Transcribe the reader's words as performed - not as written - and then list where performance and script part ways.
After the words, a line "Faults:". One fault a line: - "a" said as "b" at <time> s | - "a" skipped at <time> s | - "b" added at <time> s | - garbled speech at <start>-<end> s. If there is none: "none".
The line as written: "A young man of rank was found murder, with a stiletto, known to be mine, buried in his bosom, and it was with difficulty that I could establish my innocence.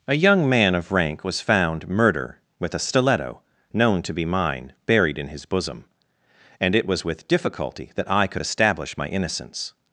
"A young man of rank was found murder, with a stiletto, known to be mine, buried in his bosom, and it was with difficulty that I could establish my innocence.
Faults:
none